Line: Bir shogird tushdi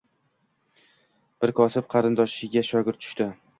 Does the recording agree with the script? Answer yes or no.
no